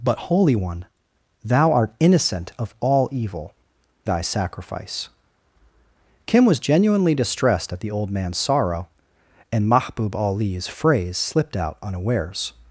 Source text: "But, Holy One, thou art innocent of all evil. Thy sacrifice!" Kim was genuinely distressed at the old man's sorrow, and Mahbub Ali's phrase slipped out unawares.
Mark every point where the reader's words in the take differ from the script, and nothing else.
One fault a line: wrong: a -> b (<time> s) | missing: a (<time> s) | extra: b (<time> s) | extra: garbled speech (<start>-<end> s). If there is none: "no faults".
no faults